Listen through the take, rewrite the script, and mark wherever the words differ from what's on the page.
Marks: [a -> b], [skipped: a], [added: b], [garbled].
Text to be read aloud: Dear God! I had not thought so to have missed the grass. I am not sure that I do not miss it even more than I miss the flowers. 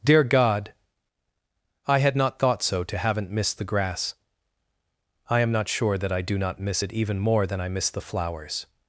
Dear God! I had not thought so to [have -> haven't] missed the grass. I am not sure that I do not miss it even more than I miss the flowers.